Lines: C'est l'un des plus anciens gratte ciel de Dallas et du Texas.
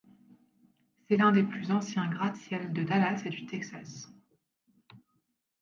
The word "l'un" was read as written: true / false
true